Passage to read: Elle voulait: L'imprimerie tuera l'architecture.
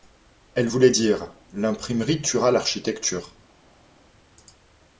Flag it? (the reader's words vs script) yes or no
yes